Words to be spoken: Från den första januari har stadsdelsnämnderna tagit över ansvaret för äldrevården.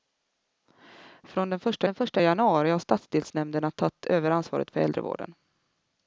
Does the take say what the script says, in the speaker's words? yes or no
no